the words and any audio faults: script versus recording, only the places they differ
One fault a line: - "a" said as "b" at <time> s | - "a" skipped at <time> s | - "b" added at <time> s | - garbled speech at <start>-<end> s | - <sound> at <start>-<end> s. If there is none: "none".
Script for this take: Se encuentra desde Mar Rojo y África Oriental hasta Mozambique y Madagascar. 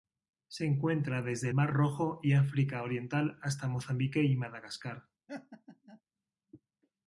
- laugh at 5.3-6.0 s